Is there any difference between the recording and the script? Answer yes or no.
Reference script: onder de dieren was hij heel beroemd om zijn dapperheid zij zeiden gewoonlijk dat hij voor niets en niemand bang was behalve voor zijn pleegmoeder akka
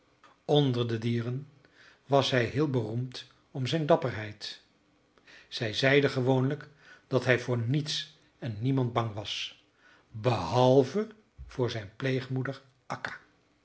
no